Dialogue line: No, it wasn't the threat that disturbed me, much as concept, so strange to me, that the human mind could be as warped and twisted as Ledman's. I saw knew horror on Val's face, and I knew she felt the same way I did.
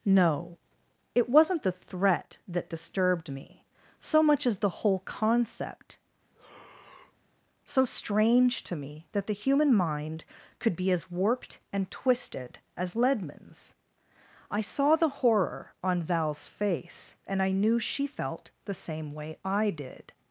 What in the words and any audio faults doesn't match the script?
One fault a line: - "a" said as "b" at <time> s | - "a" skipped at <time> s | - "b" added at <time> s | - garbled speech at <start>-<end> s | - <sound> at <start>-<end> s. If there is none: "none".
- "so" added at 4.0 s
- "the whole" added at 4.6 s
- breath at 6.3-7.3 s
- "knew" said as "the" at 15.0 s